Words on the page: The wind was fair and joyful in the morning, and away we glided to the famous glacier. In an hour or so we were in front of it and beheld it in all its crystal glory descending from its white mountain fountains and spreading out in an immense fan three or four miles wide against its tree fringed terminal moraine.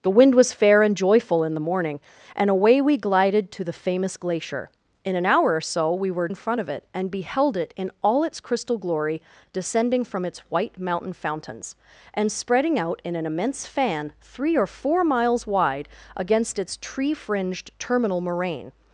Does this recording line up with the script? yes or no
yes